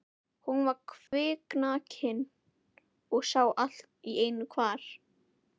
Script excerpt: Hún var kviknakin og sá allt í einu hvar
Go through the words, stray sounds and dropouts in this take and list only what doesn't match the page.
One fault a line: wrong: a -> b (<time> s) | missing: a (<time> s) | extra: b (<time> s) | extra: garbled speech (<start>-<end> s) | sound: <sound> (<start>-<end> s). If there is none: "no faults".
sound: dropout (1.1-1.1 s)